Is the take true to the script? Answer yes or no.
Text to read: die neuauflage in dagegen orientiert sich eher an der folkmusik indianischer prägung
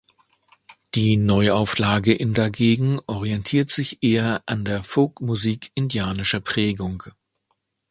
yes